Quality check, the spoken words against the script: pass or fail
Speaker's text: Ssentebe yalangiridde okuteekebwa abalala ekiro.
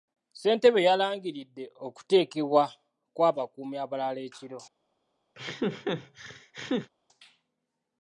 fail